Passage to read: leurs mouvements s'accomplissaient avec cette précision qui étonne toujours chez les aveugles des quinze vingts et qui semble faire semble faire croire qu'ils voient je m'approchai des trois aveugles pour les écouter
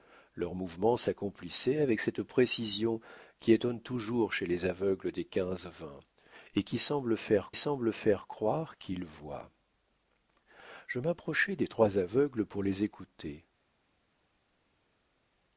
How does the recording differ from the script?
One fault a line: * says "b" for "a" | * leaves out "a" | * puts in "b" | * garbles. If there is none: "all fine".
all fine